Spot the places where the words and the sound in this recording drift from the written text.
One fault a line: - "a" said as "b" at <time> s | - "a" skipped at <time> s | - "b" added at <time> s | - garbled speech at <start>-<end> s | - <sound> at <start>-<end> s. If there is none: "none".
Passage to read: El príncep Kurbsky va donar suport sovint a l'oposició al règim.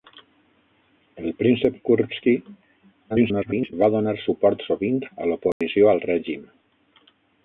- garbled speech at 3.1-3.7 s
- dropout at 5.5-5.6 s